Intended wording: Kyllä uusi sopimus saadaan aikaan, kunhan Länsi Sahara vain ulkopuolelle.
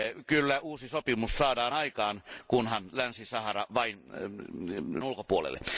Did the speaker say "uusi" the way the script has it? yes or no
yes